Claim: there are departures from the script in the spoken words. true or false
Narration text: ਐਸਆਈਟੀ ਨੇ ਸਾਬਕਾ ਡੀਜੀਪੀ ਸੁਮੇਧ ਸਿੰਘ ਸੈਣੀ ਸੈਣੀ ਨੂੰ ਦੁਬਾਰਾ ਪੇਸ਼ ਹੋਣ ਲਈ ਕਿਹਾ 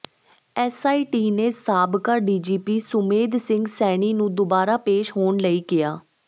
true